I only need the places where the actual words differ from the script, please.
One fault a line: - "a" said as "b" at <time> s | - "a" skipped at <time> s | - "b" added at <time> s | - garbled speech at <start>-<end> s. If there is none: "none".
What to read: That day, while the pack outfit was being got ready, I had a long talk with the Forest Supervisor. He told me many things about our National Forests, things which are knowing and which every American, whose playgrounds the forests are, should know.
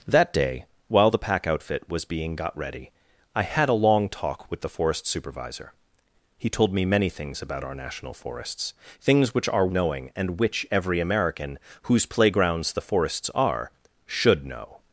none